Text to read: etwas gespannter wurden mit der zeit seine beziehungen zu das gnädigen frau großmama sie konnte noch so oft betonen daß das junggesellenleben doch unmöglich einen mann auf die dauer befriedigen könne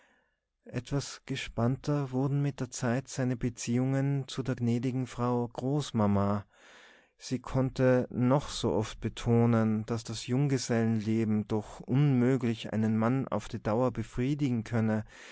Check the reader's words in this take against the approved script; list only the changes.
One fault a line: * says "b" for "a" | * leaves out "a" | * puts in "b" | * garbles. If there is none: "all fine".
* says "der" for "das"